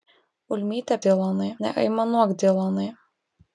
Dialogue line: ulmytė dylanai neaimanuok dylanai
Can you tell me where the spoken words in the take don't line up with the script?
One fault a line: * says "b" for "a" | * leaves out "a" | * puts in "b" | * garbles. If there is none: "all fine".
all fine